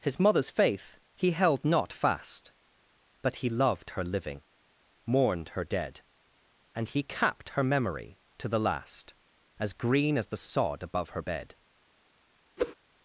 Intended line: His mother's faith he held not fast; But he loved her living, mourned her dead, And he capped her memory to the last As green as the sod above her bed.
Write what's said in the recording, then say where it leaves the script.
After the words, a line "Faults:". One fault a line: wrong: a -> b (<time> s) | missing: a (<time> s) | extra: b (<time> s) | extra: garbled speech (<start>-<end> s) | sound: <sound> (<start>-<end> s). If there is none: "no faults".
His mother's faith he held not fast; But he loved her living, mourned her dead, And he capped her memory to the last As green as the sod above her bed.
Faults:
sound: whoosh (12.6-12.8 s)